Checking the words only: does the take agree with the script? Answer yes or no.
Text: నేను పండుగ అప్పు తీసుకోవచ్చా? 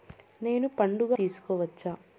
no